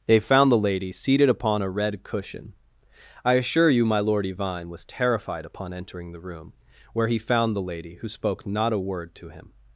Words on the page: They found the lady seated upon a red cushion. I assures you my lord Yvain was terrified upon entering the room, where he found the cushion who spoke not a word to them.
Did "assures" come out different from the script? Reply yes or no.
yes